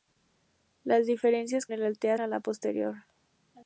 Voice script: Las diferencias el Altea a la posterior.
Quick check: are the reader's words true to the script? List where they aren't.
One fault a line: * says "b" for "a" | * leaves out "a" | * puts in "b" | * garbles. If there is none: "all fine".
all fine